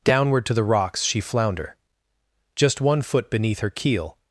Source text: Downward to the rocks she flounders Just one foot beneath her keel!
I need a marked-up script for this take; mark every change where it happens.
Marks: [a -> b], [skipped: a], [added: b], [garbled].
Downward to the rocks she [flounders -> flounder] Just one foot beneath her keel!